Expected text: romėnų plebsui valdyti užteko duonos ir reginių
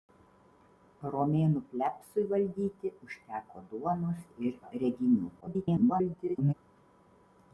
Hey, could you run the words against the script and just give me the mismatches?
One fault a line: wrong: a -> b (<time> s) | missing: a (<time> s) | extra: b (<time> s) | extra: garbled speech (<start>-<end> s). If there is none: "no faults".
extra: garbled speech (5.4-6.5 s)